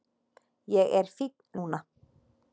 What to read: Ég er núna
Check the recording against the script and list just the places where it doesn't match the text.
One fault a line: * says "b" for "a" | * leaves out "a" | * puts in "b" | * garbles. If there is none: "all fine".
* puts in "fínn"